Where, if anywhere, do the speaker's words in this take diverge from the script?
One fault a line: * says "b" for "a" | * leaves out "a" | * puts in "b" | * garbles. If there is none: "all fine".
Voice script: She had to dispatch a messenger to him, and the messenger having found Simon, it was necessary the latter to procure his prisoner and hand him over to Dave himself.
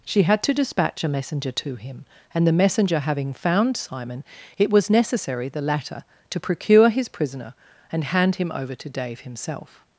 all fine